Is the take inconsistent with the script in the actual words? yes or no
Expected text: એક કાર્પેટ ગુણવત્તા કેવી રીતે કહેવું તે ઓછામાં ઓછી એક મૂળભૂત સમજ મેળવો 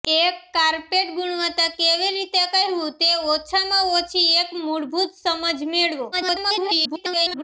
yes